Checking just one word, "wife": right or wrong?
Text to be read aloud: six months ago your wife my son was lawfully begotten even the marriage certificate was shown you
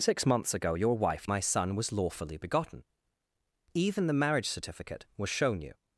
right